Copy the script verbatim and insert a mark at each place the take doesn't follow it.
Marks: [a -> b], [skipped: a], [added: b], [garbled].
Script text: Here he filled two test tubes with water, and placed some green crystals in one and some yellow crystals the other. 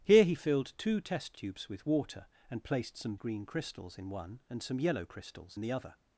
Here he filled two test tubes with water, and placed some green crystals in one and some yellow crystals the other.